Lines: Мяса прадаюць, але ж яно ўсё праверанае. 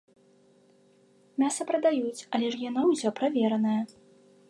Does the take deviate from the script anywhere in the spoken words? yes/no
no